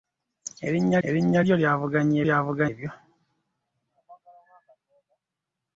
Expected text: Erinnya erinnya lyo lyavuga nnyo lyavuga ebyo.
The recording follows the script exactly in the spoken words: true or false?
true